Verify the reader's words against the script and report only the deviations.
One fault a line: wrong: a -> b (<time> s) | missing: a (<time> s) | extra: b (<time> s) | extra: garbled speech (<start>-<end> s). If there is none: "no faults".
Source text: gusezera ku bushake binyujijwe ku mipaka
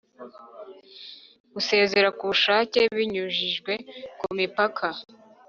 no faults